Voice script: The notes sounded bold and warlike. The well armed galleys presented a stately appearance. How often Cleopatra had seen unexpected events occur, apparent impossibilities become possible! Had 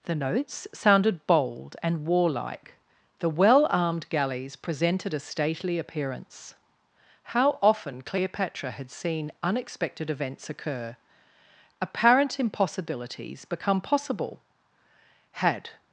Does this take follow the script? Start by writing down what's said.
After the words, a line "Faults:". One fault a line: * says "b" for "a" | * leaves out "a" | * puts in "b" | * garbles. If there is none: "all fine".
The notes sounded bold and warlike. The well armed galleys presented a stately appearance. How often Cleopatra had seen unexpected events occur, apparent impossibilities become possible! Had
Faults:
all fine